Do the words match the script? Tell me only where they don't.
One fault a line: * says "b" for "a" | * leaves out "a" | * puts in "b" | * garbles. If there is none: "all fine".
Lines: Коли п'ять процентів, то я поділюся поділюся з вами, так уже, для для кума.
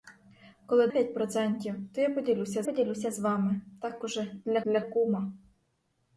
all fine